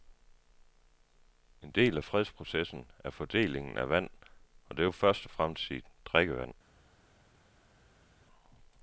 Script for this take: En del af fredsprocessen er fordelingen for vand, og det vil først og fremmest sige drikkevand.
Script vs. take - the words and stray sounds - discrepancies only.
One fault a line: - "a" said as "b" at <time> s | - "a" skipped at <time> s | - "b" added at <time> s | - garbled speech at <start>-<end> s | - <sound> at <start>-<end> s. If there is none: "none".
- "for" said as "af" at 3.8 s